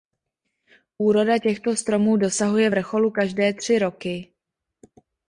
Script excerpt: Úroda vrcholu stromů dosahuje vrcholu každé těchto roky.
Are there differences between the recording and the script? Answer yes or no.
yes